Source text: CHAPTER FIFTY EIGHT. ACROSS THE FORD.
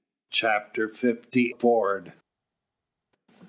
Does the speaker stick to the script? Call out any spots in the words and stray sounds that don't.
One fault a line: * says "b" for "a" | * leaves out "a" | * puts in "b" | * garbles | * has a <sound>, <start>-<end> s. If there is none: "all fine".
* leaves out "EIGHT ACROSS THE"